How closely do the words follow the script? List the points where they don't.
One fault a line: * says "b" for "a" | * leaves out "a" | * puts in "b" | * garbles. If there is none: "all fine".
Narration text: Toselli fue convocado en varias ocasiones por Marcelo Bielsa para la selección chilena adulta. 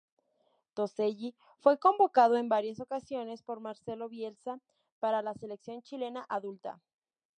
all fine